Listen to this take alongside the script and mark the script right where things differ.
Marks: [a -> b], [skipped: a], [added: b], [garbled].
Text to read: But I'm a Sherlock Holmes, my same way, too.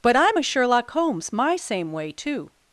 But I'm a Sherlock Holmes, my same way, too.